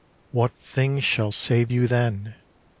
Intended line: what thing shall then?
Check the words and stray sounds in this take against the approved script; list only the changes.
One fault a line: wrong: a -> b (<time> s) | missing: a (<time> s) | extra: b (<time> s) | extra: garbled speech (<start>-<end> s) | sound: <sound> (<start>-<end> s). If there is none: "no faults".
extra: save You (1.3 s)